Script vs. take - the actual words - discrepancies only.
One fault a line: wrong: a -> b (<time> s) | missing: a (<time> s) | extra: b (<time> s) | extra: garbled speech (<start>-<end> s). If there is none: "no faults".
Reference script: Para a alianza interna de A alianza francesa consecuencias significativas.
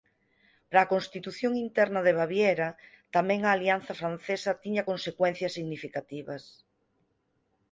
wrong: alianza -> constitución (0.9 s)
extra: Baviera tamén (2.2 s)
extra: tiña (4.6 s)